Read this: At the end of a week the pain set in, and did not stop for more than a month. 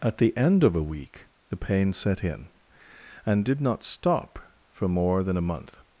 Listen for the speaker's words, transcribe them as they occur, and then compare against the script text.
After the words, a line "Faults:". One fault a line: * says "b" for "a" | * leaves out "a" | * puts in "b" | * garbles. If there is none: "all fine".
At the end of a week the pain set in, and did not stop for more than a month.
Faults:
all fine